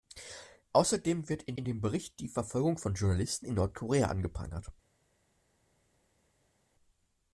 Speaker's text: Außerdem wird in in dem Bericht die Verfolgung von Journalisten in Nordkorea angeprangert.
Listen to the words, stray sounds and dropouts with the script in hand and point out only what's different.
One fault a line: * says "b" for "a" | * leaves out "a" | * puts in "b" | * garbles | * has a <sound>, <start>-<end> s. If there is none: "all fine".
all fine